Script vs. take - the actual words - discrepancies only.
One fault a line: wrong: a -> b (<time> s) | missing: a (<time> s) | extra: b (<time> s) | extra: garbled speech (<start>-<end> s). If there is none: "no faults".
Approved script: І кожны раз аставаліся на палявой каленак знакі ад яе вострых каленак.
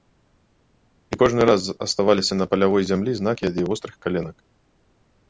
wrong: каленак -> зямлі (2.9 s)